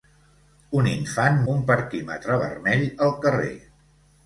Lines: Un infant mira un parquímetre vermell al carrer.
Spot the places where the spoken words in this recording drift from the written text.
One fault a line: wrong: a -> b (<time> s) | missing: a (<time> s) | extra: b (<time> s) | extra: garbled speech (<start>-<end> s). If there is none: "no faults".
missing: mira (1.4 s)